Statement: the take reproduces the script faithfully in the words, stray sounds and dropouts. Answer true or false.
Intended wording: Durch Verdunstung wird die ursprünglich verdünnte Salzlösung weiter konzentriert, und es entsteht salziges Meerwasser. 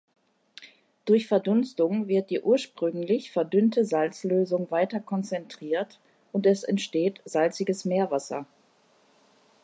true